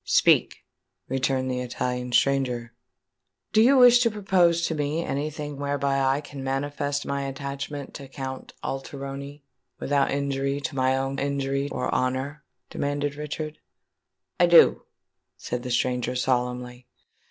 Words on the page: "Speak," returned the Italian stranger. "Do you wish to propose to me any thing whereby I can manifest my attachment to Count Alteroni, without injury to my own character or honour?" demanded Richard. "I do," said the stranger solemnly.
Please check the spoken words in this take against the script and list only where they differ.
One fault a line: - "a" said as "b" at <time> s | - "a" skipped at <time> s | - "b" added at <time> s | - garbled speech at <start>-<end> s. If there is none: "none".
- "character" said as "injury" at 11.2 s